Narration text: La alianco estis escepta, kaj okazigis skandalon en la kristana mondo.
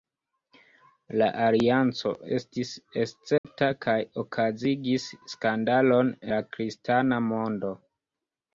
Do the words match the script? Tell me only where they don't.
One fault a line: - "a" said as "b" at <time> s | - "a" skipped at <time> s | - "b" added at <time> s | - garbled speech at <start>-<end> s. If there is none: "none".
- "en" skipped at 6.1 s